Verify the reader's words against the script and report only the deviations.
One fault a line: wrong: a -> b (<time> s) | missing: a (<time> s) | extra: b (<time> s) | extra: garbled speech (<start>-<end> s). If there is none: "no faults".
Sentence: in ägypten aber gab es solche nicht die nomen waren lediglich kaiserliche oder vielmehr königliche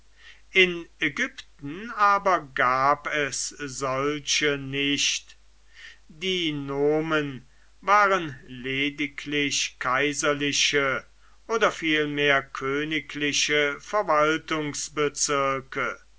no faults